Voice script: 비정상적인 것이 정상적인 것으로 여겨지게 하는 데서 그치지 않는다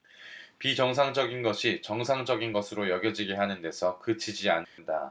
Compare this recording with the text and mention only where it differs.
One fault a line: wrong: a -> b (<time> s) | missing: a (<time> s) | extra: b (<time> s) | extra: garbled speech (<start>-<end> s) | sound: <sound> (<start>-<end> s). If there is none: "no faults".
sound: dropout (4.6-4.8 s)